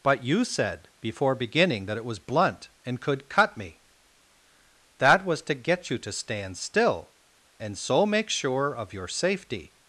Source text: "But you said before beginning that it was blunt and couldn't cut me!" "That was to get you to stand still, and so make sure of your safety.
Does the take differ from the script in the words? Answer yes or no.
yes